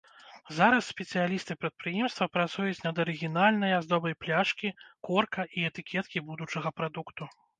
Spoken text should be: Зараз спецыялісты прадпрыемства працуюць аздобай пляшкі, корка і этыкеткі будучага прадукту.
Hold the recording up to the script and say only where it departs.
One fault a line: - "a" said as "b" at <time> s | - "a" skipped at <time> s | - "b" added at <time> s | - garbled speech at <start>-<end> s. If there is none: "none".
- "над арыгінальнай" added at 2.9 s